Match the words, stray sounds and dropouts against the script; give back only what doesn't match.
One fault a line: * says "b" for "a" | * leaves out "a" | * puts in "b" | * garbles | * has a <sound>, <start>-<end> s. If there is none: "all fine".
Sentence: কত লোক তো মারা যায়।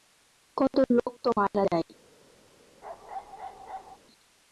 * has a bark, 2.8-4.0 s